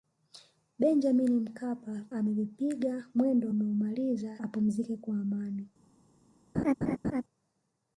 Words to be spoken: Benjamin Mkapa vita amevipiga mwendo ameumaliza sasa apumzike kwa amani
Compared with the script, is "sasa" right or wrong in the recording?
wrong